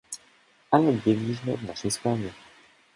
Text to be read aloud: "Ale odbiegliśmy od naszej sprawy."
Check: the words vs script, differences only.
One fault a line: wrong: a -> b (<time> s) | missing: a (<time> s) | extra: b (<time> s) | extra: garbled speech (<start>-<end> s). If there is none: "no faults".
no faults